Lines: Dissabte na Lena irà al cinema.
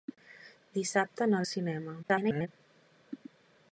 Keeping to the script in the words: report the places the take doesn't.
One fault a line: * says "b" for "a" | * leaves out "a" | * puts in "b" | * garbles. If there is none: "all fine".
* leaves out "Lena irà"
* garbles